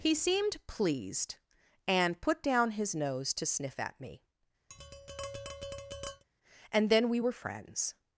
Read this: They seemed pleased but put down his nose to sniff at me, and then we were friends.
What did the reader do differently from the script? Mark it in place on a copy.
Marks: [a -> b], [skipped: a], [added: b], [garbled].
[They -> He] seemed pleased [but -> and] put down his nose to sniff at me, and then we were friends.